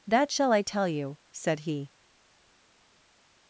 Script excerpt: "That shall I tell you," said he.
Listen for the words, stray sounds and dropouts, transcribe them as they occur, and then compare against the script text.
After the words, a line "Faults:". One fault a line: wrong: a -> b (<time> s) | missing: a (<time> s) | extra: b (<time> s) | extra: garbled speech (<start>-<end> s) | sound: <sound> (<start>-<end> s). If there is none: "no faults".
"That shall I tell you," said he.
Faults:
no faults